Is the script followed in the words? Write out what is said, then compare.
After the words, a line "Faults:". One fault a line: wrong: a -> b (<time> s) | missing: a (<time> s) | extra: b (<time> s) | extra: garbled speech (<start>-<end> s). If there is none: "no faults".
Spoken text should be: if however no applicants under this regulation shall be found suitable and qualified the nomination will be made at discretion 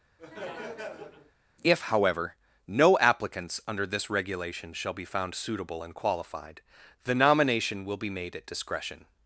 if however no applicants under this regulation shall be found suitable and qualified the nomination will be made at discretion
Faults:
no faults